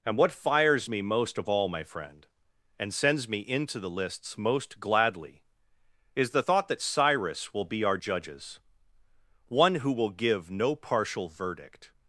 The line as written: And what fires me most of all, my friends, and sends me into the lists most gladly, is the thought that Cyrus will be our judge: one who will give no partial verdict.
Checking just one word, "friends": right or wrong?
wrong